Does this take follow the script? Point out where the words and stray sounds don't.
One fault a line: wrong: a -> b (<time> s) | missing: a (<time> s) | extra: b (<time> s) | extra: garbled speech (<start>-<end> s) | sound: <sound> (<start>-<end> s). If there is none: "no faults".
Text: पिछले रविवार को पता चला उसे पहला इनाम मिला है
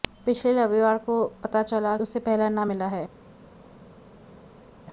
no faults